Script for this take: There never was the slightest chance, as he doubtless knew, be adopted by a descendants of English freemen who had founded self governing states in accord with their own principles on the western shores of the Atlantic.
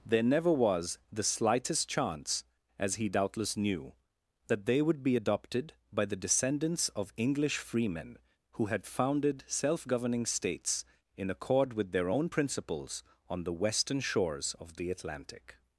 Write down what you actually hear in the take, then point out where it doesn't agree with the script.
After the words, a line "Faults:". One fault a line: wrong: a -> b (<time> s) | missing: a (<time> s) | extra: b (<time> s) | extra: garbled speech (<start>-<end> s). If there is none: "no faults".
There never was the slightest chance, as he doubtless knew, that they would be adopted by the descendants of English freemen who had founded self governing states in accord with their own principles on the western shores of the Atlantic.
Faults:
extra: that they would (4.5 s)
wrong: a -> the (6.0 s)